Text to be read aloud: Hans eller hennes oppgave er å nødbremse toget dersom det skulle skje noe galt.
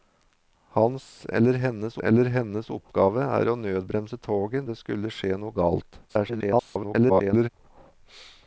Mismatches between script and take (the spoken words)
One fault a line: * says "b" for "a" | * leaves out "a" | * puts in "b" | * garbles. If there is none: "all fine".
* puts in "eller hennes"
* leaves out "dersom"
* garbles